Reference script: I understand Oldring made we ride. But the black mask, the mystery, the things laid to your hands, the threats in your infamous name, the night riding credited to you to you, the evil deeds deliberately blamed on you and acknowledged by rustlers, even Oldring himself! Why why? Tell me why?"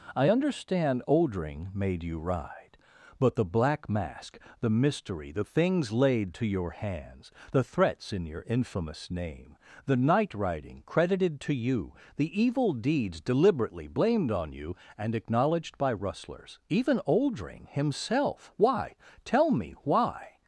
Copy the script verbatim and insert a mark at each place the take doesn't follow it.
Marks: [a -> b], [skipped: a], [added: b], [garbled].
I understand Oldring made [we -> you] ride. But the black mask, the mystery, the things laid to your hands, the threats in your infamous name, the night riding credited to you [skipped: to you,] the evil deeds deliberately blamed on you and acknowledged by rustlers, even Oldring himself! Why [skipped: why?] Tell me why?"